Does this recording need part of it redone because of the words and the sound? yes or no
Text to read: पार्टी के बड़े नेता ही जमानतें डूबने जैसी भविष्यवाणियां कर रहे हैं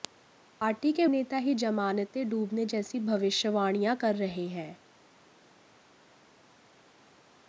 yes